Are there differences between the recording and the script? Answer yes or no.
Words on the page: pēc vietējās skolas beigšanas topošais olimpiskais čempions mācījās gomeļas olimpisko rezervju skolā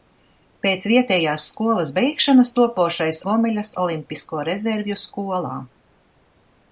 yes